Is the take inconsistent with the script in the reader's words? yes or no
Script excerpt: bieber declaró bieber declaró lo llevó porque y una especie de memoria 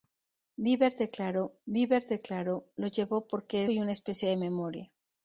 no